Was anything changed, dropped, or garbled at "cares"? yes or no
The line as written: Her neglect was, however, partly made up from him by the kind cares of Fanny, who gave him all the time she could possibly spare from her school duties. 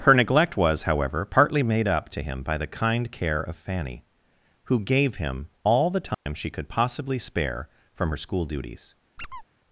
yes